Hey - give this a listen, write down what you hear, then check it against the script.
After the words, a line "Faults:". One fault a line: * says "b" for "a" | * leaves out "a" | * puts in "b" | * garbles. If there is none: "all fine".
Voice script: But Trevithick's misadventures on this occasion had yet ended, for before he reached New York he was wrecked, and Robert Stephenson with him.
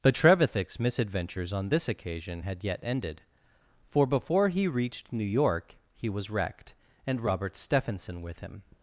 But Trevithick's misadventures on this occasion had yet ended, for before he reached New York he was wrecked, and Robert Stephenson with him.
Faults:
all fine